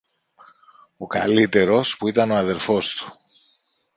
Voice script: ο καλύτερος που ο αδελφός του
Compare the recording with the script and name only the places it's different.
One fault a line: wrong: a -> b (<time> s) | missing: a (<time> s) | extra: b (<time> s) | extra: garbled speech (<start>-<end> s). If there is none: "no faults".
extra: ήταν (2.1 s)